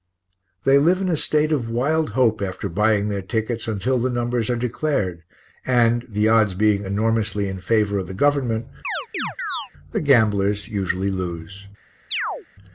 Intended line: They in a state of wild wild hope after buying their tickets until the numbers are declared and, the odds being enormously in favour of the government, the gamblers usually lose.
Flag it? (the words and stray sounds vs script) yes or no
yes